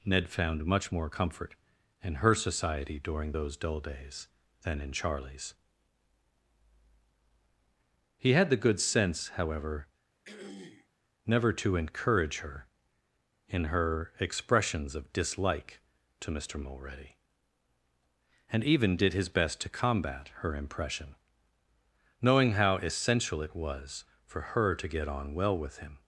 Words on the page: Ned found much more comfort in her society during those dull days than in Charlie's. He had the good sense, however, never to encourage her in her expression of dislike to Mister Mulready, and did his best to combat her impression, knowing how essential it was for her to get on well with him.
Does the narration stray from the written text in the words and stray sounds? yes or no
yes